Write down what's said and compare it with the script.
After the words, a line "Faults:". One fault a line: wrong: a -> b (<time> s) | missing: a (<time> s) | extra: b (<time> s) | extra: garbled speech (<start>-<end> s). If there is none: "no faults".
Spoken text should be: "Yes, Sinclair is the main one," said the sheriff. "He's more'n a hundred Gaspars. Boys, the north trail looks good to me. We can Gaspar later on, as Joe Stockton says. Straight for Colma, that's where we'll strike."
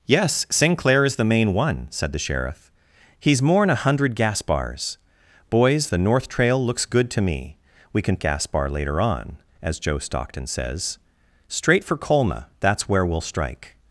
"Yes, Sinclair is the main one," said the sheriff. "He's more'n a hundred Gaspars. Boys, the north trail looks good to me. We can Gaspar later on, as Joe Stockton says. Straight for Colma, that's where we'll strike."
Faults:
no faults